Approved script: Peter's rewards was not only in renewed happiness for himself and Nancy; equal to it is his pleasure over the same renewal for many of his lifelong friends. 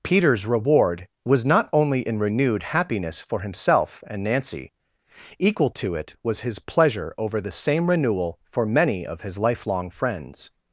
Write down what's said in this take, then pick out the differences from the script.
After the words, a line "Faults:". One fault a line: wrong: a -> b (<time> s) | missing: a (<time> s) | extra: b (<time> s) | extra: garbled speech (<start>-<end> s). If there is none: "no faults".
Peter's reward was not only in renewed happiness for himself and Nancy; equal to it was his pleasure over the same renewal for many of his lifelong friends.
Faults:
wrong: rewards -> reward (0.5 s)
wrong: is -> was (6.2 s)